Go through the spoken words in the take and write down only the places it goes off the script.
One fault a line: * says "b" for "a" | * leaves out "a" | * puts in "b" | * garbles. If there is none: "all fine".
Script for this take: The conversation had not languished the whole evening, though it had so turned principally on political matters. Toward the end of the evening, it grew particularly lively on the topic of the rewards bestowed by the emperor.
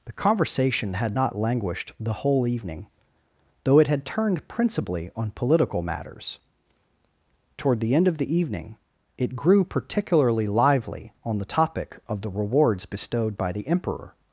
* leaves out "so"